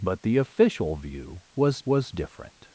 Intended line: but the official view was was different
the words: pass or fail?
pass